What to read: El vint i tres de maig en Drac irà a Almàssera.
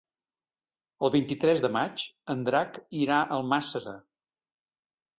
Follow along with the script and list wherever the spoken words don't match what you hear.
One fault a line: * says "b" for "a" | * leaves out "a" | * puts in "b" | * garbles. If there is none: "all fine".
all fine